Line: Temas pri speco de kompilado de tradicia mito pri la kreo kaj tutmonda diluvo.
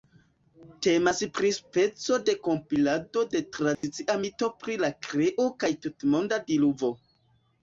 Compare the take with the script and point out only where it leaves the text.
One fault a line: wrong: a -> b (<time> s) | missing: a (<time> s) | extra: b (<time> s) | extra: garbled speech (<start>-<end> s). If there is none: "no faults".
no faults